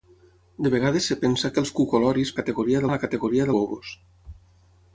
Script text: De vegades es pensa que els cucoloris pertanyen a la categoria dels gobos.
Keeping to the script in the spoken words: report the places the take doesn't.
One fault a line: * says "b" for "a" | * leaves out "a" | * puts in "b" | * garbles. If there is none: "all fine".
* says "categoria" for "pertanyen"
* leaves out "dels"